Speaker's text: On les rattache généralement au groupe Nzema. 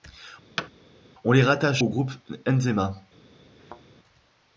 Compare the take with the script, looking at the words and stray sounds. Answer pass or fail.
fail